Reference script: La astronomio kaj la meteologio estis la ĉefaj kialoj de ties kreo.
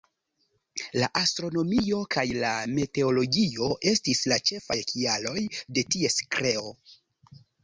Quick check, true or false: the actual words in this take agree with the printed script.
true